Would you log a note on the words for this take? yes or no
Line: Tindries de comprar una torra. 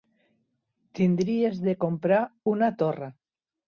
no